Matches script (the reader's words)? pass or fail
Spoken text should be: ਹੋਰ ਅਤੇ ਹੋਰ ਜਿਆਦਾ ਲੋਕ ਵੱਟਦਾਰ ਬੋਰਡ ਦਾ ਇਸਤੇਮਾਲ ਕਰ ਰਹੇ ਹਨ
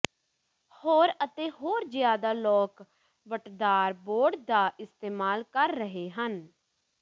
pass